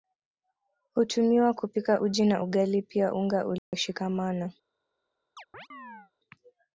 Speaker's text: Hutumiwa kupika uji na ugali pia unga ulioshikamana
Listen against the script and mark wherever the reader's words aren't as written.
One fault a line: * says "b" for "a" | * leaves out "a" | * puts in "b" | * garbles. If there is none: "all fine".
all fine